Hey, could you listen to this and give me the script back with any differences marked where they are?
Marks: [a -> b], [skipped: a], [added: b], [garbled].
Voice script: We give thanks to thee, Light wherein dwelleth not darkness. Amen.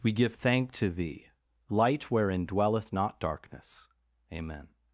We give [thanks -> thank] to thee, Light wherein dwelleth not darkness. Amen.